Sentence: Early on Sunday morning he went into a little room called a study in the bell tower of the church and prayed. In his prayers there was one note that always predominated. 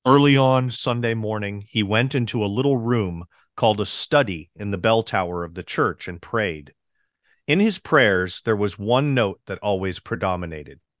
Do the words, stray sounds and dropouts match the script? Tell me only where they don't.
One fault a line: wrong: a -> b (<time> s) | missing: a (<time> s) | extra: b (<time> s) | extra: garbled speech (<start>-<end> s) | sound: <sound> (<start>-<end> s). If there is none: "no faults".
no faults